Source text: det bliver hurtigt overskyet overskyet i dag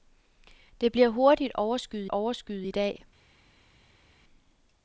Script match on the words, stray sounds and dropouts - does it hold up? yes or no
yes